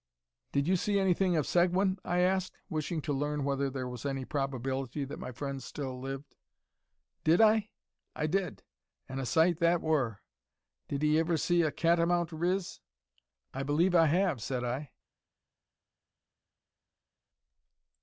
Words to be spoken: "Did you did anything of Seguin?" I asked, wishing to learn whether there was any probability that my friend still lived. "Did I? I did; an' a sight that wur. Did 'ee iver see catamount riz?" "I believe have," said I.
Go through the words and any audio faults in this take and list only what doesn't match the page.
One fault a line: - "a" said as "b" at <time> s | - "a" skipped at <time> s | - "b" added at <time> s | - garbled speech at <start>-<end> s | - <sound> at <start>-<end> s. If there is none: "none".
- "did" said as "see" at 0.8 s
- "a" added at 11.6 s
- "I" added at 13.9 s